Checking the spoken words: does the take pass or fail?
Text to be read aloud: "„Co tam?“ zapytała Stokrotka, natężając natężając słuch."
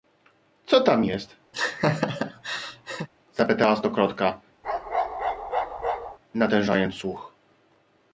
fail